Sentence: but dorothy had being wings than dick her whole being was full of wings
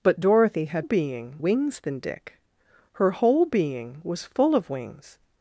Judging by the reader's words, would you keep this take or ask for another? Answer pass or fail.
pass